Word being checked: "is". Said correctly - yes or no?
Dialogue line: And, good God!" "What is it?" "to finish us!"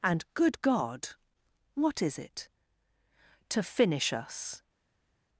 yes